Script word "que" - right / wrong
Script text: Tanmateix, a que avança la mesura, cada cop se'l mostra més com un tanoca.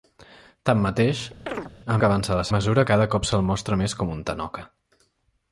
right